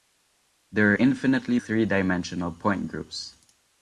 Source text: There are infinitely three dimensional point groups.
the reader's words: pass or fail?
pass